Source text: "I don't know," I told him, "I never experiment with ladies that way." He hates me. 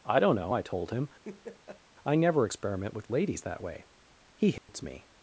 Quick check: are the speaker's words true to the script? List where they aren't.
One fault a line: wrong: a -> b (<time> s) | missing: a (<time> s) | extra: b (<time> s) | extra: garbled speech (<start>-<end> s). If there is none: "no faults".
no faults